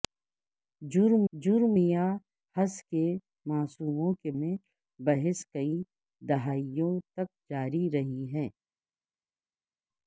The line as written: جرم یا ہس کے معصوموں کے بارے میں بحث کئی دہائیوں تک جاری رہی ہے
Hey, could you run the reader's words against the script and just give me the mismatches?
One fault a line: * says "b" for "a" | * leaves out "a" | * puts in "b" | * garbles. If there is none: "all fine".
* puts in "جرم"
* leaves out "بارے"